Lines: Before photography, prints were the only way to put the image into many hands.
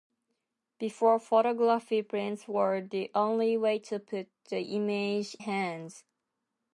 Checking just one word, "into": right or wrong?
wrong